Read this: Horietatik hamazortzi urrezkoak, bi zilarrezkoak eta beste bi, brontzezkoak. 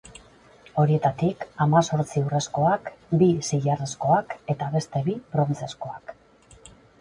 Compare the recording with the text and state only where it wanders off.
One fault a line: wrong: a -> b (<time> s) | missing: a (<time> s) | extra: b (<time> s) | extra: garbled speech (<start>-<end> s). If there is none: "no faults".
no faults